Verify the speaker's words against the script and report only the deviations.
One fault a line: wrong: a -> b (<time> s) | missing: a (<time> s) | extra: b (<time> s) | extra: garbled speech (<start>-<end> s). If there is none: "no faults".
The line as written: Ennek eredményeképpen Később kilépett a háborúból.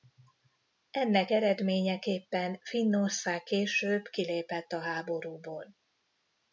extra: Finnország (2.6 s)